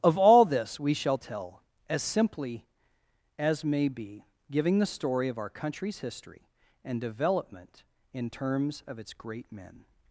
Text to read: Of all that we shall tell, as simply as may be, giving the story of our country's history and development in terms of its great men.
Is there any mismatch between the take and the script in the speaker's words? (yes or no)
yes